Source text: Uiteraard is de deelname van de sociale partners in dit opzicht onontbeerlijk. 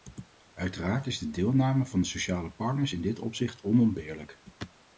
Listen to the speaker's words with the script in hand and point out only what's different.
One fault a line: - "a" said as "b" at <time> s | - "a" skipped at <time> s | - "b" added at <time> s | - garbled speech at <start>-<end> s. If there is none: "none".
none